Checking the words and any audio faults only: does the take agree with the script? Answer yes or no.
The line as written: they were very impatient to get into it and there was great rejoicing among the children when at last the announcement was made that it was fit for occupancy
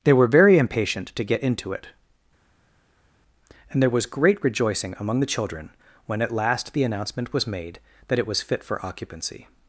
yes